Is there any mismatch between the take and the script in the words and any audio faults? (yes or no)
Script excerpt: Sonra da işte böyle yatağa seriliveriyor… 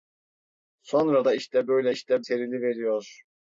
yes